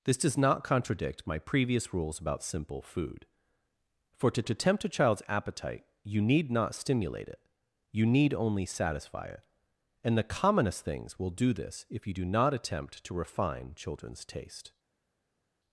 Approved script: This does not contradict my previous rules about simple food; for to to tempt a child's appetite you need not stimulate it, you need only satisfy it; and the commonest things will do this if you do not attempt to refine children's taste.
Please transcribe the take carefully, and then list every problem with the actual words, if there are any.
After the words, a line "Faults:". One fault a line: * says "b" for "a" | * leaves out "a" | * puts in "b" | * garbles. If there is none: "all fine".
This does not contradict my previous rules about simple food; for to to tempt a child's appetite you need not stimulate it, you need only satisfy it; and the commonest things will do this if you do not attempt to refine children's taste.
Faults:
all fine